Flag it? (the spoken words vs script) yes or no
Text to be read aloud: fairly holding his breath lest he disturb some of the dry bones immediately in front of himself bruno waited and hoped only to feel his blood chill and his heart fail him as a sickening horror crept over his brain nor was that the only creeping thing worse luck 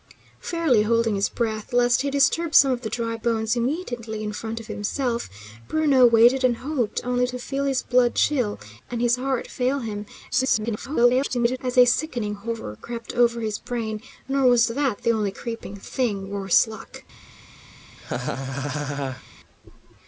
yes